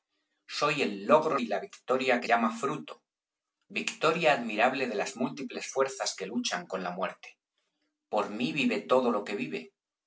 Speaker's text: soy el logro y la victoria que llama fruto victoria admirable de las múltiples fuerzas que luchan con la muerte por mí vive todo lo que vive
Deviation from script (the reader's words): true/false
false